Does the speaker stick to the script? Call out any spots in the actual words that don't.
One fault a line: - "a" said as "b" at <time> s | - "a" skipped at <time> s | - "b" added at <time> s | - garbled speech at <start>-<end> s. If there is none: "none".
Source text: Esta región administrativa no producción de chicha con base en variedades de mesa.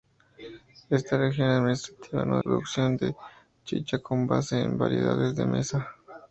none